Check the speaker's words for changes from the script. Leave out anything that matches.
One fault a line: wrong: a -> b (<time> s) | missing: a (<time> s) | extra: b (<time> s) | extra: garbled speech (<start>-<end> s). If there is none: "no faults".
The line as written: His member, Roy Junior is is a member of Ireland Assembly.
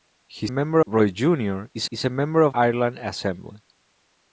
no faults